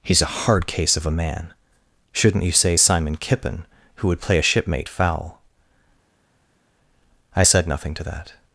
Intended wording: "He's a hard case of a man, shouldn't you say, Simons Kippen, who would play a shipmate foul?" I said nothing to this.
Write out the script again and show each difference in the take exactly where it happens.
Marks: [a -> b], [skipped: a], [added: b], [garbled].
"He's a hard case of a man, shouldn't you say, [Simons -> Simon] Kippen, who would play a shipmate foul?" I said nothing to [this. -> that]